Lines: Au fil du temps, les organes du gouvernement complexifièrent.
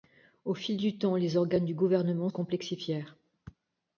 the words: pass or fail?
pass